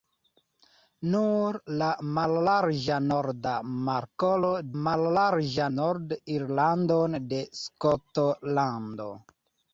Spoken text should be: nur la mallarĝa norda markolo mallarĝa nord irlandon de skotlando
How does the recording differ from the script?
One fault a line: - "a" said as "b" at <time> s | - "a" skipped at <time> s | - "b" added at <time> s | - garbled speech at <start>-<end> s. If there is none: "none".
none